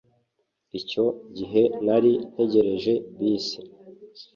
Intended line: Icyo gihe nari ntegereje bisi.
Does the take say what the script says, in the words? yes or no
yes